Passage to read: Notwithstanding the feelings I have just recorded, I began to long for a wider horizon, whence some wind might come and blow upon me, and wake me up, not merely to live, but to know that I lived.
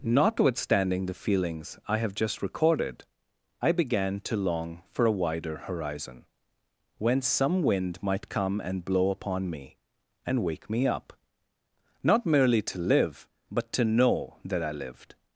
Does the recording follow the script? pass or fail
pass